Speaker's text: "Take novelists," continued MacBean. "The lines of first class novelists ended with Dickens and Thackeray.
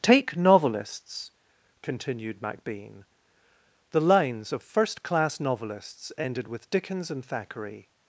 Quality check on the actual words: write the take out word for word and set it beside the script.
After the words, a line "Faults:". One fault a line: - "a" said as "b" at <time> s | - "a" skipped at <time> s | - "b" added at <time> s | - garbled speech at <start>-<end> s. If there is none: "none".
"Take novelists," continued MacBean. "The lines of first class novelists ended with Dickens and Thackeray.
Faults:
none